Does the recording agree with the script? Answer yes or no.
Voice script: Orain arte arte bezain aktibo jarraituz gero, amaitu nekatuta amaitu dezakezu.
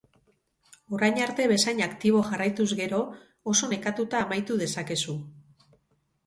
no